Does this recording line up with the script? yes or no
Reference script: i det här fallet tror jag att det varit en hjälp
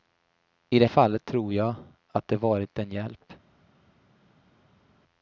no